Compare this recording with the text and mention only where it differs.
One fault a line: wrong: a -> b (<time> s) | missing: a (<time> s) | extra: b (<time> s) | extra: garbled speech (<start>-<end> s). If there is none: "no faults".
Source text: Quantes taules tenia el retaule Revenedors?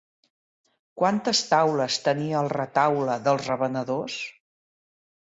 extra: dels (3.3 s)